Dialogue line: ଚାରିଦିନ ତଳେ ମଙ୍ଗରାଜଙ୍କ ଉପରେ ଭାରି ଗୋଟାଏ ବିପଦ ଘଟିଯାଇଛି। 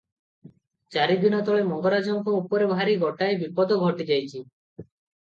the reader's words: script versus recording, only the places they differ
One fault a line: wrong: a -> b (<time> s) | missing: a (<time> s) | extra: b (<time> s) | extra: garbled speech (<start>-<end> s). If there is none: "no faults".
no faults